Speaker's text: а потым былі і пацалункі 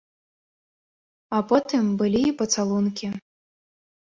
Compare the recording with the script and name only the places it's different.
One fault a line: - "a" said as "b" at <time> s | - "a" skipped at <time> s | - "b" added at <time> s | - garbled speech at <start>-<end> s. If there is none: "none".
none